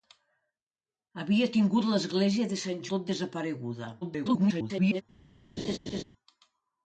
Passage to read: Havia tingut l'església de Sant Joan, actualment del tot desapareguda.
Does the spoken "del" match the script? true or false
false